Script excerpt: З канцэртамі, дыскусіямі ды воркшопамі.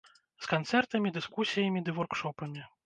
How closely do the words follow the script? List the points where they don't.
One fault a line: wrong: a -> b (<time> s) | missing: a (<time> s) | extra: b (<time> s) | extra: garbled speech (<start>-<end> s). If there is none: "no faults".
no faults